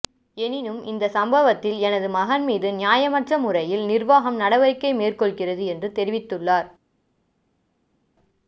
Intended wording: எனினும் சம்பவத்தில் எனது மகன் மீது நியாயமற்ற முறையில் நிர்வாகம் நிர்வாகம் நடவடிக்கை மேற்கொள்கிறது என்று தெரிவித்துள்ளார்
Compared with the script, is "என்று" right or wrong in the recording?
right